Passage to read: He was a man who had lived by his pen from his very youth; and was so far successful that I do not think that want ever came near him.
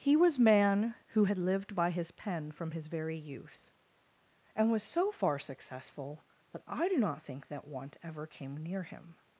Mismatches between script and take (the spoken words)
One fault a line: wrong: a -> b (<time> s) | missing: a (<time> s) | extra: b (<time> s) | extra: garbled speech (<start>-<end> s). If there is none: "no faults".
missing: a (0.4 s)